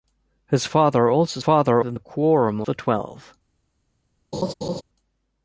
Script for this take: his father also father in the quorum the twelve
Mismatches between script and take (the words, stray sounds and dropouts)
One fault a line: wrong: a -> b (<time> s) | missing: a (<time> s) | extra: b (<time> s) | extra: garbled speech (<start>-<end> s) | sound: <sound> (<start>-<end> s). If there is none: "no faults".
sound: laugh (4.3-4.8 s)